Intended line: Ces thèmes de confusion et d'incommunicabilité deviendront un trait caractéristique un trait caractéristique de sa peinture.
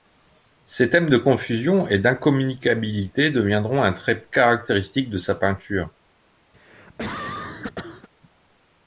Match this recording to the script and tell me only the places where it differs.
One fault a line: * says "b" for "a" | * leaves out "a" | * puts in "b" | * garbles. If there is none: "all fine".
* leaves out "un trait caractéristique"